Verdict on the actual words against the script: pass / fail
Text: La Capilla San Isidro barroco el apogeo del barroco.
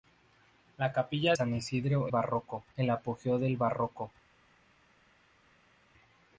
pass